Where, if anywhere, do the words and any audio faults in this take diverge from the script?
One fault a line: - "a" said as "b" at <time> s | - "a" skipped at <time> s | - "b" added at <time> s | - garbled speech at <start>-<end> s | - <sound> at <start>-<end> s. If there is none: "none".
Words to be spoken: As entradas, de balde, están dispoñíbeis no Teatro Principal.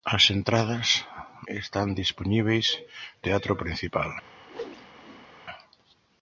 - "de balde" skipped at 1.1 s
- "no" skipped at 2.7 s
- whoosh at 4.5-5.3 s